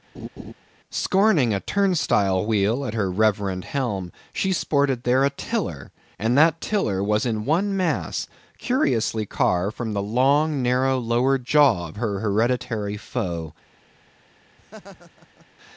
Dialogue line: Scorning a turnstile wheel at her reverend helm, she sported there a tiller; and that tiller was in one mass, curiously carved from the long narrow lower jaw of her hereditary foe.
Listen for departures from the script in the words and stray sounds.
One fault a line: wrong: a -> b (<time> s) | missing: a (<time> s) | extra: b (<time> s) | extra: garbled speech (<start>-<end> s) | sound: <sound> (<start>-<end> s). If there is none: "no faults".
sound: laugh (0.1-0.5 s)
sound: laugh (14.6-15.5 s)